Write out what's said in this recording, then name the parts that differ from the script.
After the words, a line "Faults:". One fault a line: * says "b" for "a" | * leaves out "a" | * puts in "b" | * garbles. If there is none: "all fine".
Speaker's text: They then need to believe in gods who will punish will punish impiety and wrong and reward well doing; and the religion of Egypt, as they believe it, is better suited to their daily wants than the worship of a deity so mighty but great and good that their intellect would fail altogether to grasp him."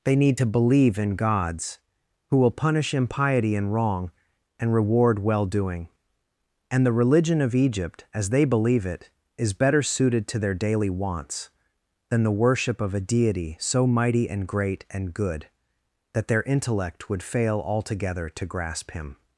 They need to believe in gods who will punish impiety and wrong and reward well doing; and the religion of Egypt, as they believe it, is better suited to their daily wants than the worship of a deity so mighty and great and good that their intellect would fail altogether to grasp him."
Faults:
* leaves out "then"
* leaves out "will punish"
* says "and" for "but"